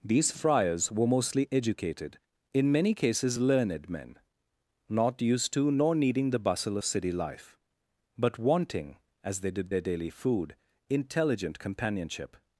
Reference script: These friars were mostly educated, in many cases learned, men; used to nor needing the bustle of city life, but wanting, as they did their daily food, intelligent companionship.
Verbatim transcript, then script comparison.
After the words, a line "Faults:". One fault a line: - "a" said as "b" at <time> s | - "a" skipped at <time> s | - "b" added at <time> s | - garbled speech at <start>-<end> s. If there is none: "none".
These friars were mostly educated, in many cases learned, men; not used to nor needing the bustle of city life, but wanting, as they did their daily food, intelligent companionship.
Faults:
- "not" added at 4.9 s